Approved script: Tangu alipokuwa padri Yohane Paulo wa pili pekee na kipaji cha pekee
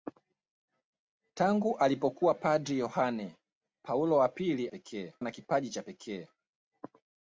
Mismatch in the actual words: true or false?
false